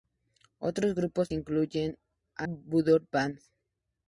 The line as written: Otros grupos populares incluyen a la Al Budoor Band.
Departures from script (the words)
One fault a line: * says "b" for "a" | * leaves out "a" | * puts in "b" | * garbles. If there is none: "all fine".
* leaves out "populares"
* leaves out "la Al"